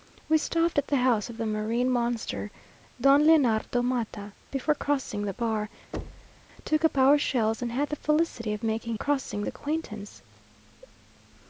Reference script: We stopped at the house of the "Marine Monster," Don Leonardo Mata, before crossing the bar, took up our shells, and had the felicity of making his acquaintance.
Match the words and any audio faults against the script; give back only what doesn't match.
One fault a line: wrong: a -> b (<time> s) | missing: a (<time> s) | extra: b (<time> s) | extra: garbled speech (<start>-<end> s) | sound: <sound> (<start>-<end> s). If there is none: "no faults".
sound: thud (5.9-6.5 s)
wrong: his -> crossing (8.9 s)